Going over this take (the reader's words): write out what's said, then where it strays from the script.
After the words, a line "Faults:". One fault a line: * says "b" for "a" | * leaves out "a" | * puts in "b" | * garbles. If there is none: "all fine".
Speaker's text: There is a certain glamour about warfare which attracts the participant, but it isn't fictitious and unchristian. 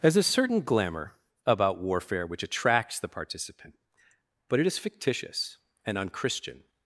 There is a certain glamour about warfare which attracts the participant, but it is fictitious and unchristian.
Faults:
* says "is" for "isn't"